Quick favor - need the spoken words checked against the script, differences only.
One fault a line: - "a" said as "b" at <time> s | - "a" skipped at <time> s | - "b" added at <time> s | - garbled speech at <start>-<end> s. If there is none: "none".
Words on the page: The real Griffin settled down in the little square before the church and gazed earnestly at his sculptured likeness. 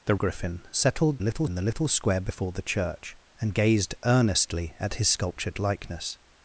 - "real" skipped at 0.1 s
- "down" said as "little" at 1.2 s